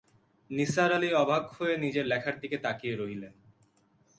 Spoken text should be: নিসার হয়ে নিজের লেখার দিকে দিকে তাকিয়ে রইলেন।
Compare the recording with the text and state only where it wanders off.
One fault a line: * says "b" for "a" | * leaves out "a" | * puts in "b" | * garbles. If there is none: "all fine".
* puts in "আলি অবাক"
* leaves out "দিকে"